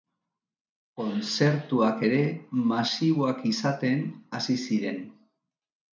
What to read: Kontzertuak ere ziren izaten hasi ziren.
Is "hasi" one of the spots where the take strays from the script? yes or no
no